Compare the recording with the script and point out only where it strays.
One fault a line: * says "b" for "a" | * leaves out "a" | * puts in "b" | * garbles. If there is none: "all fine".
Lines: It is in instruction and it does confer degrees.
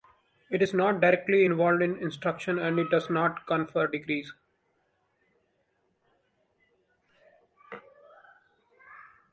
* puts in "not directly involved"
* puts in "not"